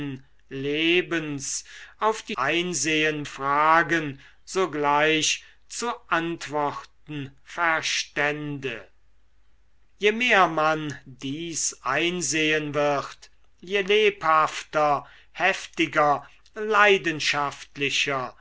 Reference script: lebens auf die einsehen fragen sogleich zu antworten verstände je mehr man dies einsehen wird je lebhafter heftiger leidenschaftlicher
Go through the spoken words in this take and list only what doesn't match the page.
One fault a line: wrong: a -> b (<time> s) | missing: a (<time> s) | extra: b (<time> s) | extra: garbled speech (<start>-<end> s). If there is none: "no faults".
no faults